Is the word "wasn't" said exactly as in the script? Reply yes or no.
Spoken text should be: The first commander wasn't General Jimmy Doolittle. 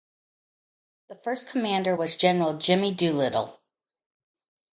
no